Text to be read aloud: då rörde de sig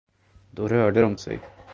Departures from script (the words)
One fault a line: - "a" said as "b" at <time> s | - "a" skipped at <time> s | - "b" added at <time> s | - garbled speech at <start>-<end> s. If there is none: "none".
none